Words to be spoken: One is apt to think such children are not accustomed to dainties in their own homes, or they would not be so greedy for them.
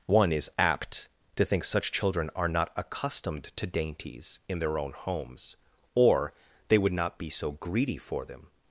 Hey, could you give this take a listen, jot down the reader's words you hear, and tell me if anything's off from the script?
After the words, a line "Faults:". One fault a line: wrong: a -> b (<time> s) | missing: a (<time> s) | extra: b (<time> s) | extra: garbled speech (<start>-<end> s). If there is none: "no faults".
One is apt to think such children are not accustomed to dainties in their own homes, or they would not be so greedy for them.
Faults:
no faults